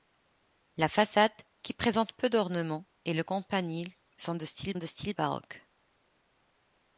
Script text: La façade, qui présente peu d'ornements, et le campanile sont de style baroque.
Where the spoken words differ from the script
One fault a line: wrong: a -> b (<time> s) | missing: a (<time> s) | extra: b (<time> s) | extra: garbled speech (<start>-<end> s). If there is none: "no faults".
extra: de style (4.7 s)